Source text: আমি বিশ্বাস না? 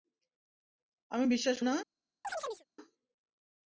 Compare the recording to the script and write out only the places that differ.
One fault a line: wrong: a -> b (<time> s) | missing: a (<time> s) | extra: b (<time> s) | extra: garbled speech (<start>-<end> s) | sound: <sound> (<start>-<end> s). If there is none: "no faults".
sound: chirp (2.2-2.6 s)